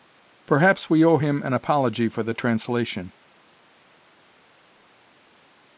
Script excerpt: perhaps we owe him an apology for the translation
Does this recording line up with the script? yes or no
yes